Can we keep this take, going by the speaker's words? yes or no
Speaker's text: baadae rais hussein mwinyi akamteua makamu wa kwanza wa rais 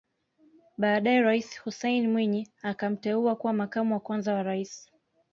no